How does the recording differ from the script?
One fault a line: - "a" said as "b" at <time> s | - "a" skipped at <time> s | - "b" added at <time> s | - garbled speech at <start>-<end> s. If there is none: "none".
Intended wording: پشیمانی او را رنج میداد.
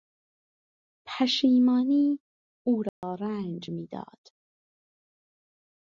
none